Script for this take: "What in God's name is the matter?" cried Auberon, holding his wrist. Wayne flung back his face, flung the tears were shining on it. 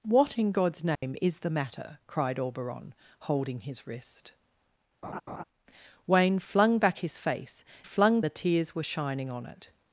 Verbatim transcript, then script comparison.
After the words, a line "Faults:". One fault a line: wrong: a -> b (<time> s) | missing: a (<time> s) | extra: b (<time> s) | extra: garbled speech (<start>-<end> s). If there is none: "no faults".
"What in God's name is the matter?" cried Auberon, holding his wrist. Wayne flung back his face, flung the tears were shining on it.
Faults:
no faults